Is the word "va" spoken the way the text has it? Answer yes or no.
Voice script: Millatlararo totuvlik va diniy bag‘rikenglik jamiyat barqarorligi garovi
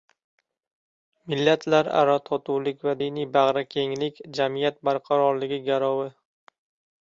yes